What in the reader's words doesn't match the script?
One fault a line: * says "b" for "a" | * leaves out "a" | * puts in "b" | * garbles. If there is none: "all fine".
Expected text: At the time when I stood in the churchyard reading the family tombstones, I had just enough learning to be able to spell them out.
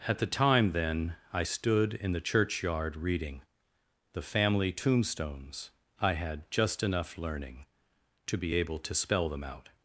* says "then" for "when"